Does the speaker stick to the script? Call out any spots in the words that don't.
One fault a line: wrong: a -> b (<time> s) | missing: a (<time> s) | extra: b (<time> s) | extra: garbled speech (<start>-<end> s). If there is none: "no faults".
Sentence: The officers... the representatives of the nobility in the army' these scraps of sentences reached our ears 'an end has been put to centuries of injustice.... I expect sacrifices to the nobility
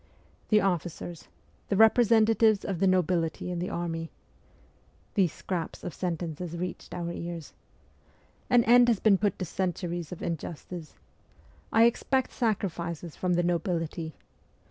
wrong: to -> from (13.1 s)